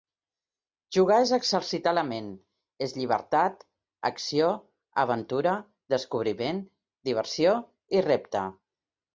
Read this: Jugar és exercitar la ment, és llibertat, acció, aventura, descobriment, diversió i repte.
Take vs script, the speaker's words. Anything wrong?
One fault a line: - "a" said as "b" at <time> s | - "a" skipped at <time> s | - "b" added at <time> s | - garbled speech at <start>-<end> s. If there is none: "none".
none